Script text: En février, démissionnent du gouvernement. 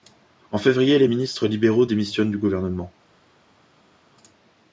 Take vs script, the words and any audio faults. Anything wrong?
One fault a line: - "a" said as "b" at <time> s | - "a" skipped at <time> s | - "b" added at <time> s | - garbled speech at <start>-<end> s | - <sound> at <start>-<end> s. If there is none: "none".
- "les ministres libéraux" added at 1.0 s